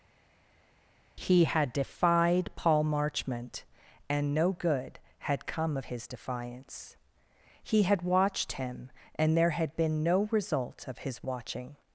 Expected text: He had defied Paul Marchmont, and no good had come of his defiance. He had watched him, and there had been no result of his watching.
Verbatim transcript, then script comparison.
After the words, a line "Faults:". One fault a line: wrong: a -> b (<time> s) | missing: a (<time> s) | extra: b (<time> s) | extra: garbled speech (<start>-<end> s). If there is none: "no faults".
He had defied Paul Marchmont, and no good had come of his defiance. He had watched him, and there had been no result of his watching.
Faults:
no faults